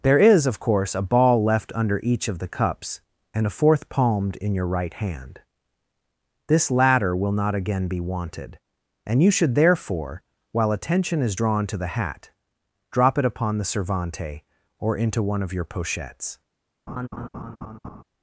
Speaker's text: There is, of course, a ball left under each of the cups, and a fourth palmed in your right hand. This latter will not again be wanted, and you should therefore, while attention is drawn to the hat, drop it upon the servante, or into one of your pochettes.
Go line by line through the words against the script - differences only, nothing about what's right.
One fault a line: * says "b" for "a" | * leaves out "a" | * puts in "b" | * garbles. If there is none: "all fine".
all fine